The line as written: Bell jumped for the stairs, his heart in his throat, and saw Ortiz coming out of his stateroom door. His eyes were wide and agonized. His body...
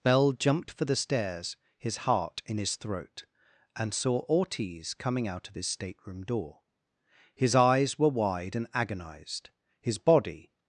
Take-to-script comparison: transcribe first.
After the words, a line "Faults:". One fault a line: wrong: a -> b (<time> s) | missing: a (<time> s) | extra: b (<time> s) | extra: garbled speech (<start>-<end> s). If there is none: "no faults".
Bell jumped for the stairs, his heart in his throat, and saw Ortiz coming out of his stateroom door. His eyes were wide and agonized. His body...
Faults:
no faults